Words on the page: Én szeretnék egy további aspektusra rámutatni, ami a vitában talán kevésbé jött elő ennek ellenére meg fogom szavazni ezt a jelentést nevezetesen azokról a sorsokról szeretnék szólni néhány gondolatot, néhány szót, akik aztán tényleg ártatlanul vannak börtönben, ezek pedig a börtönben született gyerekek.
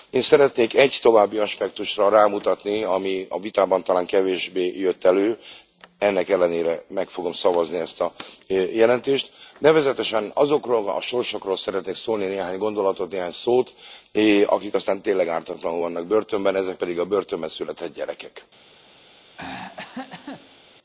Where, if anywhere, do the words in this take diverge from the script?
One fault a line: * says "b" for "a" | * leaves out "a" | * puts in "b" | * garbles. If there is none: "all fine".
all fine